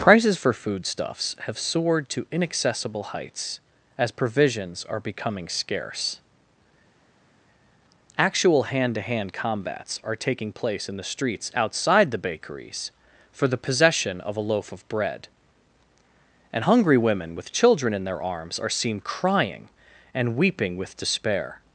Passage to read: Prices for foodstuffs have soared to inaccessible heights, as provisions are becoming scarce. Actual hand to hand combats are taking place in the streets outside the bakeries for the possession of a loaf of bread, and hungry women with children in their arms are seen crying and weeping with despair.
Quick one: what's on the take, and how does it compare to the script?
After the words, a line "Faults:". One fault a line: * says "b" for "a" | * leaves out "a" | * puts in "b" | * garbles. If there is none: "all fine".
Prices for foodstuffs have soared to inaccessible heights, as provisions are becoming scarce. Actual hand to hand combats are taking place in the streets outside the bakeries for the possession of a loaf of bread, and hungry women with children in their arms are seen crying and weeping with despair.
Faults:
all fine